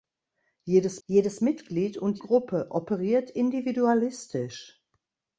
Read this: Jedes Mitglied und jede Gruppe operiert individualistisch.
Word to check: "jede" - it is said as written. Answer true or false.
false